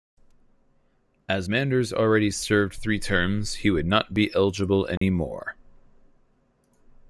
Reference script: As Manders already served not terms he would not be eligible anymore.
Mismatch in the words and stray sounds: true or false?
true